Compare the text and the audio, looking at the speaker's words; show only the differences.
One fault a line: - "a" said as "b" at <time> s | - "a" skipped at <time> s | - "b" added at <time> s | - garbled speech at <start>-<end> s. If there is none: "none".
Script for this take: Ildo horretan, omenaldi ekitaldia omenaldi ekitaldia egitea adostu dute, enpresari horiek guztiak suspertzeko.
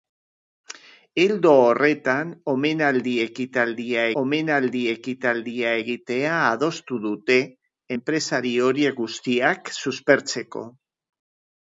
none